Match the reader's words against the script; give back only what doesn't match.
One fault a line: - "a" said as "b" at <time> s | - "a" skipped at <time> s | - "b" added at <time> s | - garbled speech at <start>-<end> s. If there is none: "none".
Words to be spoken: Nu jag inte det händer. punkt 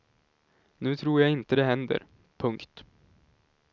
- "tror" added at 0.9 s